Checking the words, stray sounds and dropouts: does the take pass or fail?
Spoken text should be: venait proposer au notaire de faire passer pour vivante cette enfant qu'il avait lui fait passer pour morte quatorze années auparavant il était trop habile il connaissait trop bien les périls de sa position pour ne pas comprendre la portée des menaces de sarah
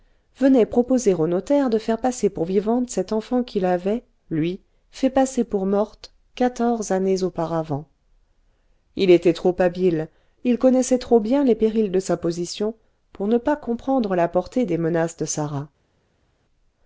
pass